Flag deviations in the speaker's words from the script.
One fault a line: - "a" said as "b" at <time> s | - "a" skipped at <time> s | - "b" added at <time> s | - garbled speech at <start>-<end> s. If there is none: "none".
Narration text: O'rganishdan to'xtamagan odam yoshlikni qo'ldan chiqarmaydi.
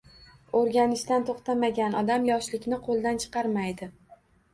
none